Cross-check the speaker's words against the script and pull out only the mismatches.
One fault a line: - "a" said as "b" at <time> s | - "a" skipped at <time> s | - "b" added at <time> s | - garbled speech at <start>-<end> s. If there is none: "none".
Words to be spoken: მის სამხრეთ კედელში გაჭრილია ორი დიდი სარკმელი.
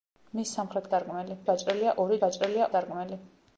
- "კედელში" said as "სარკმელი" at 0.9 s
- "დიდი" said as "გაჭრილია" at 2.2 s